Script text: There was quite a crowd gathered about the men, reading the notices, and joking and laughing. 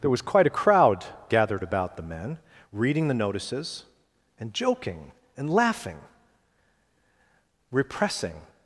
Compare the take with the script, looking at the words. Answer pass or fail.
fail